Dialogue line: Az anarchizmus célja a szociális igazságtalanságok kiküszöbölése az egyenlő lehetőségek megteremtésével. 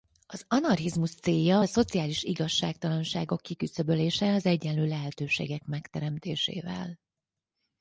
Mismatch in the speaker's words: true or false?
false